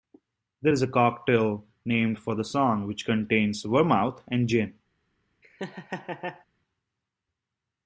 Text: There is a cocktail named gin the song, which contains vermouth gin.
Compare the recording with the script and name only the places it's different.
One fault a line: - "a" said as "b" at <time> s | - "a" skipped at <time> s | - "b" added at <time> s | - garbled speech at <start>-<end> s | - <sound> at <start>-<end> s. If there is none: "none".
- "gin" said as "for" at 2.2 s
- "and" added at 4.3 s
- laugh at 5.4-6.5 s